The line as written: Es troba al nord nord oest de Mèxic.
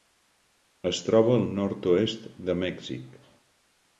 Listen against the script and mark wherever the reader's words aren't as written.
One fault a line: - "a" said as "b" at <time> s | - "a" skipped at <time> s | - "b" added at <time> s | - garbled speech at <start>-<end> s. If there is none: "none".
- "nord" skipped at 1.9 s